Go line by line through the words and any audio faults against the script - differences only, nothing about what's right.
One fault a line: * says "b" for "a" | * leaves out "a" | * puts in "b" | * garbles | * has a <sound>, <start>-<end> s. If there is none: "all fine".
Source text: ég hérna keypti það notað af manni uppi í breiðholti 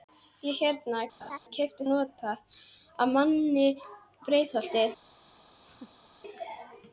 * has a laugh, 1.2-1.4 s
* leaves out "það"
* leaves out "uppi"
* has a laugh, 5.6-6.1 s